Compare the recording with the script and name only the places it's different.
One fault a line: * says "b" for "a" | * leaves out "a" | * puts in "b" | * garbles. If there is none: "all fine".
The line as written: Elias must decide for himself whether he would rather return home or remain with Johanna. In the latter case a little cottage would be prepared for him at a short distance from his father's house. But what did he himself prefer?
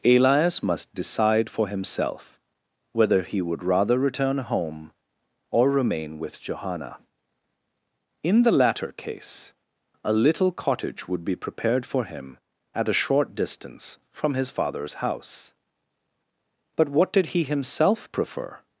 all fine